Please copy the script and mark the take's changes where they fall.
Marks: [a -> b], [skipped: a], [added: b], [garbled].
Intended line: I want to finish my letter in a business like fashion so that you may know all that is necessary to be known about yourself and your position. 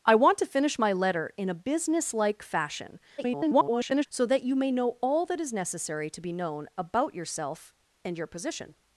I want to finish my letter in a business like fashion [garbled] so that you may know all that is necessary to be known about yourself and your position.